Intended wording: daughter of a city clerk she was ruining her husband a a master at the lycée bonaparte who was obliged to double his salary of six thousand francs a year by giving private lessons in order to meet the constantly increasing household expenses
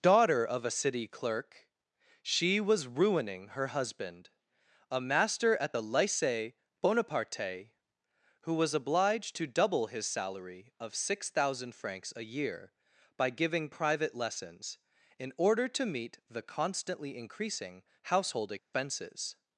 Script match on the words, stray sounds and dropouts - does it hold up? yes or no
no